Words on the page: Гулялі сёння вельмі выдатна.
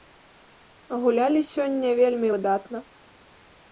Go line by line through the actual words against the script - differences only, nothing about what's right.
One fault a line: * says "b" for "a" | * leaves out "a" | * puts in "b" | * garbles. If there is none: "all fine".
all fine